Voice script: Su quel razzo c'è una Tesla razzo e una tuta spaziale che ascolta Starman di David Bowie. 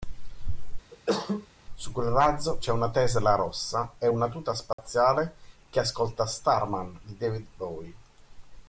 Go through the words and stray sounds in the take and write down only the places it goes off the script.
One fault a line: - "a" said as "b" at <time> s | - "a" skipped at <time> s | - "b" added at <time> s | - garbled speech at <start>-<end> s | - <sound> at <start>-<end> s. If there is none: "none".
- cough at 0.9-1.5 s
- "razzo" said as "rossa" at 3.4 s
- dropout at 4.7-4.8 s